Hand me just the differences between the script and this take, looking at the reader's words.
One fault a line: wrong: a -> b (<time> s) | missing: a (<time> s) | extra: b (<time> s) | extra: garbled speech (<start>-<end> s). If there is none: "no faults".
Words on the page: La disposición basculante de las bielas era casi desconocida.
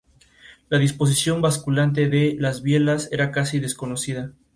no faults